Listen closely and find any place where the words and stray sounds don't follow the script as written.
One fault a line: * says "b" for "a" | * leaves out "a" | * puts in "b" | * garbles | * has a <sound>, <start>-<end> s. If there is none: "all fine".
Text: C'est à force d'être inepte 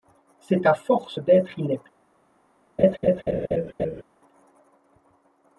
* has a laugh, 2.8-4.0 s